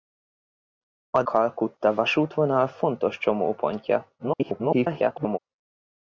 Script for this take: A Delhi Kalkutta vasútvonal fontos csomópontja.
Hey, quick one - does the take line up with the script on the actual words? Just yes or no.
no